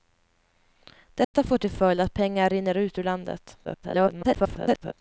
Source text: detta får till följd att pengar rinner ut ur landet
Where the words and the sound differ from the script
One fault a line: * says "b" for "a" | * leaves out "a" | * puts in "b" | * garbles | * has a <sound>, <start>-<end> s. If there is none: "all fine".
* has a dropout, 1.2-1.3 s
* garbles